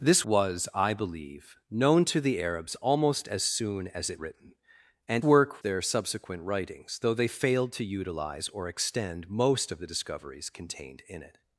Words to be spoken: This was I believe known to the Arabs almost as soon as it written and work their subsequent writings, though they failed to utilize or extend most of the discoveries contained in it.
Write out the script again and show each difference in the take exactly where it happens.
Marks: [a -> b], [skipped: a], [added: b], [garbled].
This was I believe known to the Arabs almost as soon as it written and work their subsequent writings, though they failed to utilize or extend most of the discoveries contained in it.